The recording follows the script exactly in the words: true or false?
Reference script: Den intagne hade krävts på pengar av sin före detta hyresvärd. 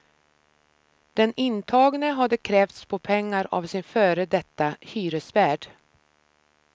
true